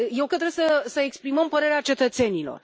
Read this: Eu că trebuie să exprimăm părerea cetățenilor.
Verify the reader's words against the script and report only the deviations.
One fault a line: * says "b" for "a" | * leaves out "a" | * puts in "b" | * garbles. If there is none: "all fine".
all fine